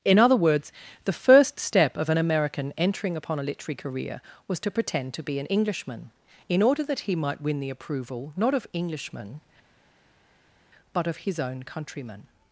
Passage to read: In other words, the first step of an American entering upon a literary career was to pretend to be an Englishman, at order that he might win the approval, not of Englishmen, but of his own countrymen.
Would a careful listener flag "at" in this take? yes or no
yes